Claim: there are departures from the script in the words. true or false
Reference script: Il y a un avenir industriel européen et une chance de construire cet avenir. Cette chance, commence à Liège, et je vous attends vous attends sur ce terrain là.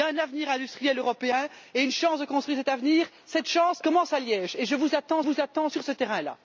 false